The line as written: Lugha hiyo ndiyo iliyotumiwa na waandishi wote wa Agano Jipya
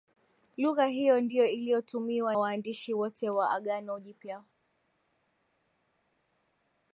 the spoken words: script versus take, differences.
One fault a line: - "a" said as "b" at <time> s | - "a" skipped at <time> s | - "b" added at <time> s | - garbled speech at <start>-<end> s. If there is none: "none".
- "na" skipped at 2.4 s